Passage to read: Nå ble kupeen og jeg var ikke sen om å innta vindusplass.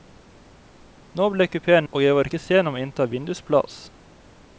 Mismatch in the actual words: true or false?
false